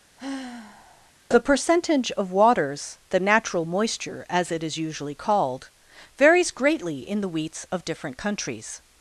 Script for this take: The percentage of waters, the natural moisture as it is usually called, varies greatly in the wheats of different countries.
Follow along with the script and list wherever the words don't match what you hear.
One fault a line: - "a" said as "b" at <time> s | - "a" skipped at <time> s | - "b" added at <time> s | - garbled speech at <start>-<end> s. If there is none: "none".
none